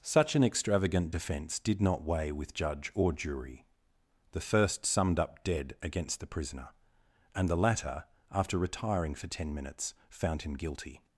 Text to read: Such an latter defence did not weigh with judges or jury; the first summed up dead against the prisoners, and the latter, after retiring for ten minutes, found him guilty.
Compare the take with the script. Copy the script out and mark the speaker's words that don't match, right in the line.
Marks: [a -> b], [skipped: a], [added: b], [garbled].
Such an [latter -> extravagant] defence did not weigh with [judges -> judge] or jury; the first summed up dead against the [prisoners, -> prisoner] and the latter, after retiring for ten minutes, found him guilty.